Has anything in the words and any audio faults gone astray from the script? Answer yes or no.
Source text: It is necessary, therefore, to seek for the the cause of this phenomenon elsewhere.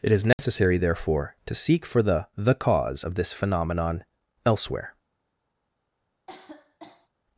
yes